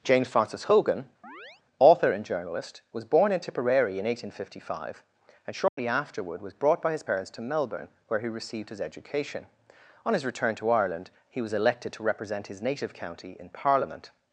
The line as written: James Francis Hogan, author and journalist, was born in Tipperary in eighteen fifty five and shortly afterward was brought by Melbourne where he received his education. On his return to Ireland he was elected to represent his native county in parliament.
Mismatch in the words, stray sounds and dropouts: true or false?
true